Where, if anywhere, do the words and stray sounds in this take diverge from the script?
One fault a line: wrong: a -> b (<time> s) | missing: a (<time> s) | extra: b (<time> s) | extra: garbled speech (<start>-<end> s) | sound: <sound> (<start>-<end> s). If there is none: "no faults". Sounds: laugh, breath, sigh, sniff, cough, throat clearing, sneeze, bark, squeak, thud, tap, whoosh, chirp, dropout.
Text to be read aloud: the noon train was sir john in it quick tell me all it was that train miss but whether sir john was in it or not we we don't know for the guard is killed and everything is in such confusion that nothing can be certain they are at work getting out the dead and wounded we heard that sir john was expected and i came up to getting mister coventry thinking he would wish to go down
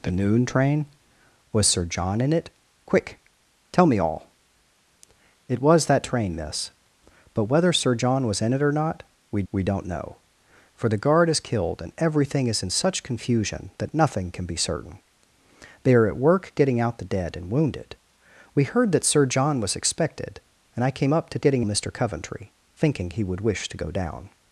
no faults